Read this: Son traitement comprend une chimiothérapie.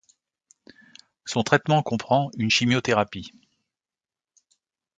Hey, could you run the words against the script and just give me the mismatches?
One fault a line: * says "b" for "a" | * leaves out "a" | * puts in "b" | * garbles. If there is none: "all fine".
all fine